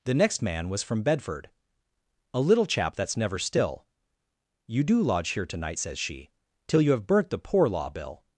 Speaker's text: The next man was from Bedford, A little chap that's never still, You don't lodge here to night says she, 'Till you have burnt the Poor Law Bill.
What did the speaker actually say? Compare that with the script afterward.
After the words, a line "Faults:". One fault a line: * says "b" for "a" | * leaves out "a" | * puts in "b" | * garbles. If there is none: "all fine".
The next man was from Bedford, A little chap that's never still, You do lodge here to night says she, 'Till you have burnt the Poor Law Bill.
Faults:
* says "do" for "don't"